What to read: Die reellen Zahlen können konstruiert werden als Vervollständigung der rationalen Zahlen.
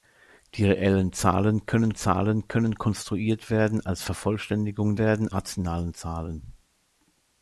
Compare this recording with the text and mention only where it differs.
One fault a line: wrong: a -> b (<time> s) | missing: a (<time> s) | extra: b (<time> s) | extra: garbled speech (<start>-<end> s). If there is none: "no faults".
extra: Zahlen können (2.0 s)
wrong: der -> werden (5.0 s)